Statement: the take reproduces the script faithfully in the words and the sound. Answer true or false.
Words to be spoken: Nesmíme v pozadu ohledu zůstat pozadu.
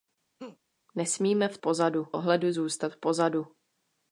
false